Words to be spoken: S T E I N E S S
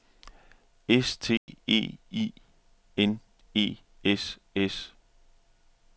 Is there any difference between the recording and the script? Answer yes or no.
no